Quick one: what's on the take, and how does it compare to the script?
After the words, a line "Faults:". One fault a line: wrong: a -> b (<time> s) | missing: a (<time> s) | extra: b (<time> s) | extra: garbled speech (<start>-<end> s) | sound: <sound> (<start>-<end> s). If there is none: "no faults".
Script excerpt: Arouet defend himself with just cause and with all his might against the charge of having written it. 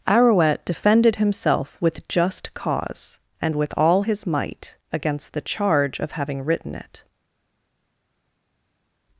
Arouet defended himself with just cause and with all his might against the charge of having written it.
Faults:
wrong: defend -> defended (0.7 s)